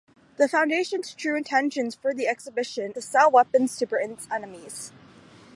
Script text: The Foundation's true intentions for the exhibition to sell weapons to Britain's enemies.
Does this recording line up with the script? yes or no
yes